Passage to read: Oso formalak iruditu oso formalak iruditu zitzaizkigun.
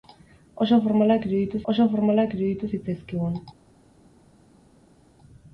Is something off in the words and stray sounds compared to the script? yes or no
no